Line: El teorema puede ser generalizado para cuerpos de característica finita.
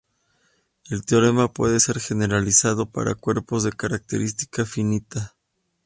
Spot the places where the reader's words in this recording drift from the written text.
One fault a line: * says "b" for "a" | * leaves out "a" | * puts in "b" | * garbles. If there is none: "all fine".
all fine